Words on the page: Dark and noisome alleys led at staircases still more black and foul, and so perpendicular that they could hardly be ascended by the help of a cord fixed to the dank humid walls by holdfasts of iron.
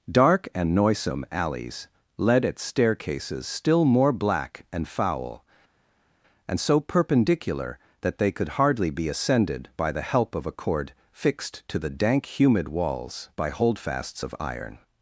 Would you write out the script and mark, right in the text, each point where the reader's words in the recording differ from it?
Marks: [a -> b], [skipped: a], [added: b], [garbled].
Dark and noisome alleys led at staircases still more black and foul, and so perpendicular that they could hardly be ascended by the help of a cord fixed to the dank humid walls by holdfasts of iron.